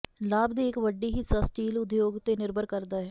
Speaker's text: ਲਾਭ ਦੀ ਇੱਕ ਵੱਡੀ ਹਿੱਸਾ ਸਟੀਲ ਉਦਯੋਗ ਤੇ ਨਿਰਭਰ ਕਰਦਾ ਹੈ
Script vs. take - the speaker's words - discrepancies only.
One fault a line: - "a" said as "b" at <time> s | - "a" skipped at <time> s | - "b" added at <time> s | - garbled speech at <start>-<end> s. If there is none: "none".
none